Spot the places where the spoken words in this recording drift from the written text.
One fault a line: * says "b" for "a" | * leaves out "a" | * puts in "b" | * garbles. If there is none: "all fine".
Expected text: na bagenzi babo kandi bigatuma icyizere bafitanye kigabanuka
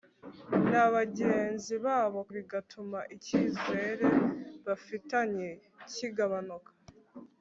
* leaves out "kandi"